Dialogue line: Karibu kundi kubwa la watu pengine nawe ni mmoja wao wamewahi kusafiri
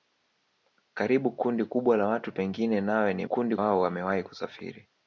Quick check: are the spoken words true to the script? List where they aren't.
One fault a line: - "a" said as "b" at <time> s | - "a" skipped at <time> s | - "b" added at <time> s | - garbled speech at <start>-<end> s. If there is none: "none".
- "mmoja" said as "kundi" at 3.2 s